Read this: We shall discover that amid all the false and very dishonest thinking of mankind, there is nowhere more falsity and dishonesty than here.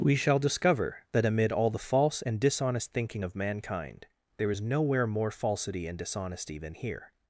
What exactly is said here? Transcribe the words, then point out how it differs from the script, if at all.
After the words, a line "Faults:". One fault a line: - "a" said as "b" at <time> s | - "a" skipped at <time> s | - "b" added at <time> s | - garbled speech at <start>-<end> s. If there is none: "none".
We shall discover that amid all the false and dishonest thinking of mankind, there is nowhere more falsity and dishonesty than here.
Faults:
- "very" skipped at 2.4 s